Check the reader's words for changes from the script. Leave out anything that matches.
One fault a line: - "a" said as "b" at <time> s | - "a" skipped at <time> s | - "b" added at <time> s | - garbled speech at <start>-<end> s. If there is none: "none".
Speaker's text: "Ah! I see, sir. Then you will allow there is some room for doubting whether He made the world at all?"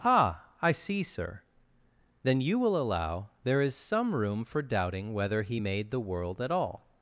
none